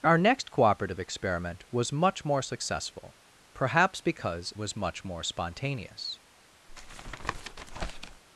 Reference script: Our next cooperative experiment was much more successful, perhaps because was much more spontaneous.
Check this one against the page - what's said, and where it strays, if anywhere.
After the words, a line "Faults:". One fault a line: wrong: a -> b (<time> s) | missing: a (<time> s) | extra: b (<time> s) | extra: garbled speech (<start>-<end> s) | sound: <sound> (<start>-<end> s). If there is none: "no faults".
Our next cooperative experiment was much more successful, perhaps because was much more spontaneous.
Faults:
sound: tap (6.7-8.2 s)